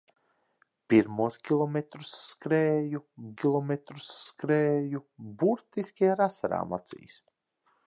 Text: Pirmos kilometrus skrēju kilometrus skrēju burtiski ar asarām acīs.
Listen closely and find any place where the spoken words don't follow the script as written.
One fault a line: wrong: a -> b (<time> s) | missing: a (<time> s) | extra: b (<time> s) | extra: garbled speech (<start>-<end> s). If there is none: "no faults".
no faults